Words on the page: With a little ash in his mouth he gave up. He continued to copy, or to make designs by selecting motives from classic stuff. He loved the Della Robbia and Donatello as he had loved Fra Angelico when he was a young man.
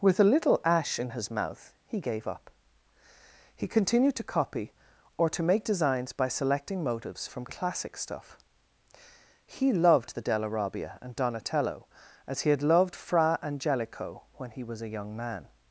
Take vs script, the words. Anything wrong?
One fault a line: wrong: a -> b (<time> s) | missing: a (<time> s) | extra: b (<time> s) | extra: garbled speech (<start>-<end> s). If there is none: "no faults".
no faults